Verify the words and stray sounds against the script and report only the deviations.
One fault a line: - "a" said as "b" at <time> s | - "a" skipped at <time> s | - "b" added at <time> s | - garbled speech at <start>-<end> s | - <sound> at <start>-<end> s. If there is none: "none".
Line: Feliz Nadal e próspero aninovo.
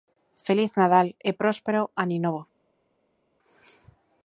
none